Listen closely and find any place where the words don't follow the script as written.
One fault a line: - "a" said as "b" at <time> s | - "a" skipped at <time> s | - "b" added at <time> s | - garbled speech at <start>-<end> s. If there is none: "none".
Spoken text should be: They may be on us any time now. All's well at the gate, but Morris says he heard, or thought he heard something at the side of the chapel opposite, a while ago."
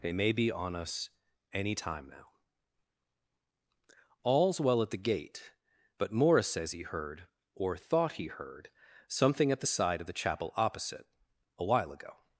none